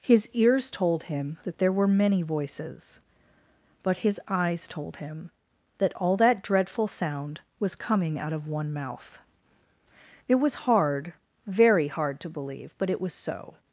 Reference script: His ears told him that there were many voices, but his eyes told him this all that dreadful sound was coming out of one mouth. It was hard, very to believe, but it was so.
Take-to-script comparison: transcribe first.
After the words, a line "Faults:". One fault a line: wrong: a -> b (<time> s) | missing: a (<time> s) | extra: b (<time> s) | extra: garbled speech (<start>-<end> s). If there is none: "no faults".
His ears told him that there were many voices, but his eyes told him that all that dreadful sound was coming out of one mouth. It was hard, very hard, to believe, but it was so.
Faults:
wrong: this -> that (5.8 s)
extra: hard (11.9 s)